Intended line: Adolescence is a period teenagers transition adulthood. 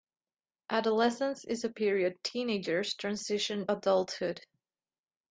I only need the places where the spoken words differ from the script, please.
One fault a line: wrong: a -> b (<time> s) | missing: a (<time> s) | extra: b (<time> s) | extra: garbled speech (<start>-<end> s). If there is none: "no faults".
no faults